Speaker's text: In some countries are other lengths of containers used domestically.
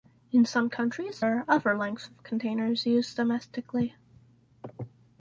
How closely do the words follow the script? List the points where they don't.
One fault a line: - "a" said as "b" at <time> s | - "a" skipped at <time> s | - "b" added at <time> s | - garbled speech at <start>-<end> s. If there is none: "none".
none